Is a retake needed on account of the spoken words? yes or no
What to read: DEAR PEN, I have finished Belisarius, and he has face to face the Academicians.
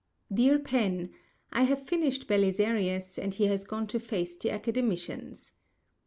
yes